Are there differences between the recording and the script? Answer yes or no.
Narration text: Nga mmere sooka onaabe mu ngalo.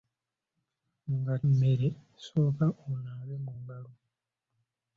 no